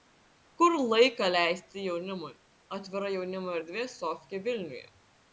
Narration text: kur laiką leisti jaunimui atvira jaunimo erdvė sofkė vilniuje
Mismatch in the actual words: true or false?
false